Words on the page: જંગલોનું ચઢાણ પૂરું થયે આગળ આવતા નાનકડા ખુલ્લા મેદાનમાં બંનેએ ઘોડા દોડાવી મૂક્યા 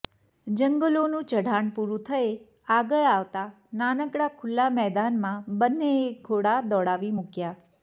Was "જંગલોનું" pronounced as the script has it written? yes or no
yes